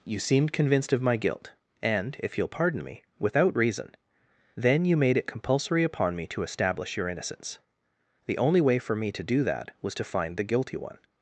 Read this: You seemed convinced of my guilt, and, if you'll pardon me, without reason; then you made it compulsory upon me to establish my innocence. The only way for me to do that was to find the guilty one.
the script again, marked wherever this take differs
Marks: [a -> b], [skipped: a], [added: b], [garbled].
You seemed convinced of my guilt, and, if you'll pardon me, without reason; then you made it compulsory upon me to establish [my -> your] innocence. The only way for me to do that was to find the guilty one.